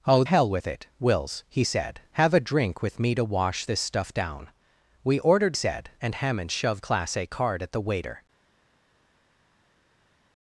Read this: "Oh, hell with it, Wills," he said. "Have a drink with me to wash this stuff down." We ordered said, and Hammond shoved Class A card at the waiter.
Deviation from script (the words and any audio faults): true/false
false